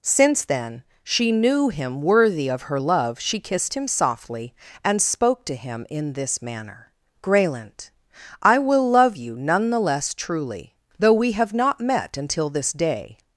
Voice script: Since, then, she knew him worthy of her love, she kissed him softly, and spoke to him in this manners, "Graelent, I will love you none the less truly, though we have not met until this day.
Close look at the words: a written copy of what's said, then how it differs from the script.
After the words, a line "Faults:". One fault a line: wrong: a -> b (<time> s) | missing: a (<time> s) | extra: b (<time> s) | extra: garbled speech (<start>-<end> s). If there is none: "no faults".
Since, then, she knew him worthy of her love, she kissed him softly, and spoke to him in this manner, "Graelent, I will love you none the less truly, though we have not met until this day.
Faults:
wrong: manners -> manner (6.4 s)